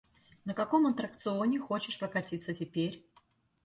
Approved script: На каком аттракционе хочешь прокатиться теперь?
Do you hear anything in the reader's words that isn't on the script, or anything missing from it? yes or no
no